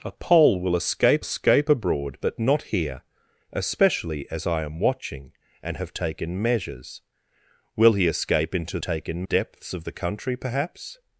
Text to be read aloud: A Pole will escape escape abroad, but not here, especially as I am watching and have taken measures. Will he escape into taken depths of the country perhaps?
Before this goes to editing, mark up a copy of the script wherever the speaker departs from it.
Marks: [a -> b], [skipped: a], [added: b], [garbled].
A Pole will escape escape abroad, but not here, especially as I am watching and have taken measures. Will he escape into taken depths of the country perhaps?